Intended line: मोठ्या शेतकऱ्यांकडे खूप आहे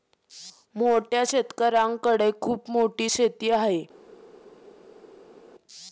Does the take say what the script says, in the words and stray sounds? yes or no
no